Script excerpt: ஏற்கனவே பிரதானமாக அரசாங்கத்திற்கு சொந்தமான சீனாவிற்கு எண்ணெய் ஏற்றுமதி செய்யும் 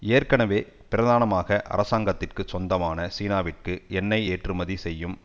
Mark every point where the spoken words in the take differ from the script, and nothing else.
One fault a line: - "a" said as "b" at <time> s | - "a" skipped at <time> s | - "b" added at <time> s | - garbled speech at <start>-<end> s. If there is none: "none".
none